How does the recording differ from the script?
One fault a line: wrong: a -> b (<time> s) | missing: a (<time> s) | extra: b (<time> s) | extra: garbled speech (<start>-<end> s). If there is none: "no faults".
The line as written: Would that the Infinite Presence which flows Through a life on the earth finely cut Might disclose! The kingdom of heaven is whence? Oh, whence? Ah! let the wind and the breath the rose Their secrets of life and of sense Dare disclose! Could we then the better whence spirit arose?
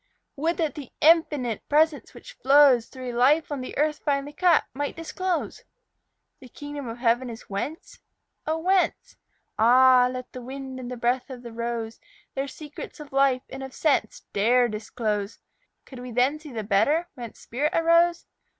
extra: of (11.3 s)
extra: see (16.4 s)